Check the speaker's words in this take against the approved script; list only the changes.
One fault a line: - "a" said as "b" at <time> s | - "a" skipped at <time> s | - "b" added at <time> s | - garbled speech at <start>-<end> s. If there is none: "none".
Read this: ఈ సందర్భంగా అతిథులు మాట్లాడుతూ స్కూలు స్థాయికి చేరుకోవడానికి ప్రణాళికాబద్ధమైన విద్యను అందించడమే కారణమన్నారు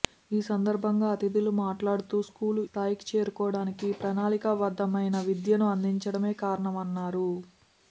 none